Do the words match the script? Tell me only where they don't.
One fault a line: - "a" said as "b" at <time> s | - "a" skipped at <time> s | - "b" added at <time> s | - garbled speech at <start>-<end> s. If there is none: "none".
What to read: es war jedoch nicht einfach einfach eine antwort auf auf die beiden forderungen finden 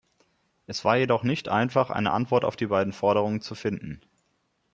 - "einfach" skipped at 1.9 s
- "auf" skipped at 2.6 s
- "zu" added at 3.4 s